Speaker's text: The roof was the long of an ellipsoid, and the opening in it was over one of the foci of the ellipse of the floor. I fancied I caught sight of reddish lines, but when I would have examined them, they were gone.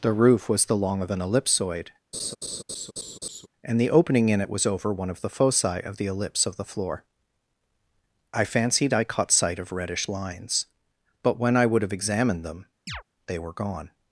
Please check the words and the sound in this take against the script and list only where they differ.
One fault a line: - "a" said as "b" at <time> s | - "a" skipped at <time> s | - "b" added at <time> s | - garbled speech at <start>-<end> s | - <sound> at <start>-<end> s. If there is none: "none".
- laugh at 2.1-3.5 s
- chirp at 12.9-13.0 s